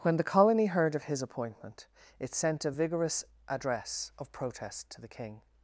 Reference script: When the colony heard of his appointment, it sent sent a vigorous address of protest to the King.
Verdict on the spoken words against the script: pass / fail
fail